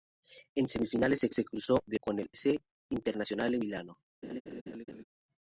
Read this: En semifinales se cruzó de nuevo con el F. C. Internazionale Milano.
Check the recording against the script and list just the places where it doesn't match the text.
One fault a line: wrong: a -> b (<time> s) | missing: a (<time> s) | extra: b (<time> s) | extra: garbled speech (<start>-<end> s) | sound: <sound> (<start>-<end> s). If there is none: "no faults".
extra: se (1.3 s)
missing: nuevo (2.0 s)
missing: F (2.3 s)
sound: laugh (4.2-5.0 s)